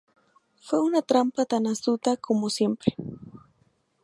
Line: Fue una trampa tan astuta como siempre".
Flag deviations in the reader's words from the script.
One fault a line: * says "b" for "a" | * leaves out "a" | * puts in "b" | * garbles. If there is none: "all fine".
all fine